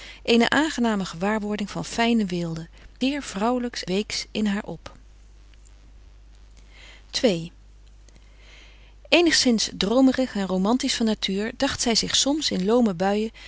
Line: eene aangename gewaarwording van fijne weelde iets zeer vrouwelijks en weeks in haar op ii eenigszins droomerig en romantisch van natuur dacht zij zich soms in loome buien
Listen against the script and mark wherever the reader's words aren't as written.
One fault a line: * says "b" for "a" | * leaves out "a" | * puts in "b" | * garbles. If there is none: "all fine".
* leaves out "iets"
* leaves out "en"